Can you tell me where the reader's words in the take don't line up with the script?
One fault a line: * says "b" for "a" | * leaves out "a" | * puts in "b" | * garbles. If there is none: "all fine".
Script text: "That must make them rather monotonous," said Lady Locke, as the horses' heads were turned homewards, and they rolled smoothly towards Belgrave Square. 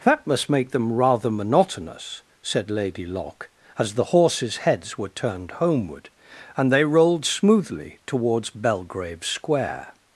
* says "homeward" for "homewards"